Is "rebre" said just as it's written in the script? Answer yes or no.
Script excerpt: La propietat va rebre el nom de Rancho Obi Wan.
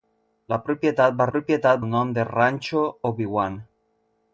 no